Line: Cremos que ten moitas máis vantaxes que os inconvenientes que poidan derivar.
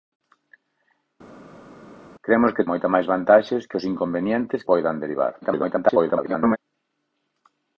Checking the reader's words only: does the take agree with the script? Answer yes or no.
no